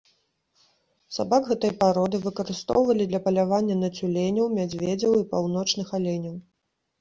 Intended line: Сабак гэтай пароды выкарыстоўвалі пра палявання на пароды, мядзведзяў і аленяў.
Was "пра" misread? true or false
true